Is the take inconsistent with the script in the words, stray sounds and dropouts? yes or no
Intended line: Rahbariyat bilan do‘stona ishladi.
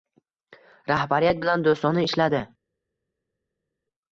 no